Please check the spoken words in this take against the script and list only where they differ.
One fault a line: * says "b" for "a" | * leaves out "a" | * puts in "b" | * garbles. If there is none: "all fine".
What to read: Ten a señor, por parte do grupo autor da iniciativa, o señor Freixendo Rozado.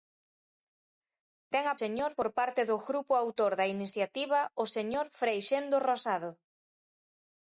all fine